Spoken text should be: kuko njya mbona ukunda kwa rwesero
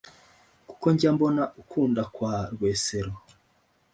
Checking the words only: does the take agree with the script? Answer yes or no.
yes